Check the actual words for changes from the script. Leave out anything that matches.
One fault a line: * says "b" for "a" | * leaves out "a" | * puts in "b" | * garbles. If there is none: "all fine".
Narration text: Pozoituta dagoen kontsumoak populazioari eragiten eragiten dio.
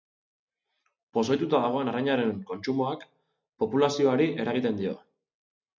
* puts in "arrainaren"
* leaves out "eragiten"